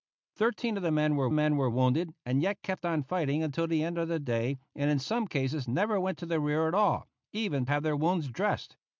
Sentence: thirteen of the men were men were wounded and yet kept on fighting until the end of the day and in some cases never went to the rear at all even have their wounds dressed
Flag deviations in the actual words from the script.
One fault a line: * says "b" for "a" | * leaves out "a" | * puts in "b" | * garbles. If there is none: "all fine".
all fine